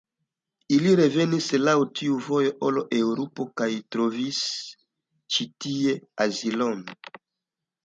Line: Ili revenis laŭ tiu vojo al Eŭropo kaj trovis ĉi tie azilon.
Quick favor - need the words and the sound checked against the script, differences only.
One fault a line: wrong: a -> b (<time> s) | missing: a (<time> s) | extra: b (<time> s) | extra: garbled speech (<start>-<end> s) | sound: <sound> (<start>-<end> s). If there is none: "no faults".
no faults